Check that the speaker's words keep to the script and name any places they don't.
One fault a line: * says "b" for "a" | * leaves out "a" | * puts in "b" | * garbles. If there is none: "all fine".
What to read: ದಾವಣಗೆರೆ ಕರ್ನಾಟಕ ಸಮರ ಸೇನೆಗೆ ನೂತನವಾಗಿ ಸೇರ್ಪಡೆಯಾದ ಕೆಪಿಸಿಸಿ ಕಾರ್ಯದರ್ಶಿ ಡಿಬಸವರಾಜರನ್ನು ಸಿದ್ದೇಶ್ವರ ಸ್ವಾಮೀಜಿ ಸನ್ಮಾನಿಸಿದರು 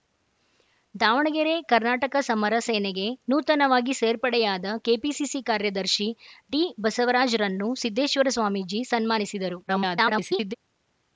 * garbles